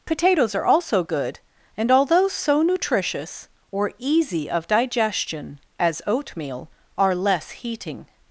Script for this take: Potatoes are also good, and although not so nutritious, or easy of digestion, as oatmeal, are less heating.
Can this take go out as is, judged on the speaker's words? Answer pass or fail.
fail